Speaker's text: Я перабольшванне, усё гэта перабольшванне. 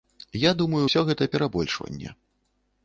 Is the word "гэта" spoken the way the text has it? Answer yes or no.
yes